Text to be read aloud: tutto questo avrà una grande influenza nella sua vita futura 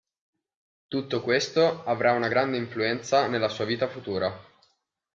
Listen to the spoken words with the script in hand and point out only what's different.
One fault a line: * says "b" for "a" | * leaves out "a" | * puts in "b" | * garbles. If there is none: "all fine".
all fine